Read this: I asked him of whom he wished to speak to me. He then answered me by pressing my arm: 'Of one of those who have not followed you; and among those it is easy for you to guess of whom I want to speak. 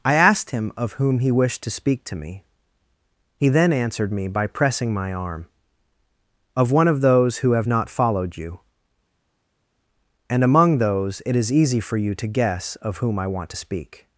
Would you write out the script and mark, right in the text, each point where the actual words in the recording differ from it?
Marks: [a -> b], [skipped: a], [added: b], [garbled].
I asked him of whom he wished to speak to me. He then answered me by pressing my arm: 'Of one of those who have not followed you; and among those it is easy for you to guess of whom I want to speak.